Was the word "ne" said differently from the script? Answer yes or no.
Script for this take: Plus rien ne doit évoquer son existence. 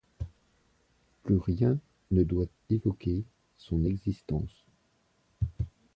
no